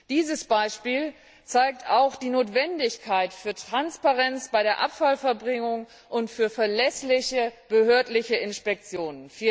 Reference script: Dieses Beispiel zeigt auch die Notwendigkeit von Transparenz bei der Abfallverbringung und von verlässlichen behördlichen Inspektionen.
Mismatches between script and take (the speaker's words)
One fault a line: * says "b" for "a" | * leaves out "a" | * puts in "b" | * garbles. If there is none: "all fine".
all fine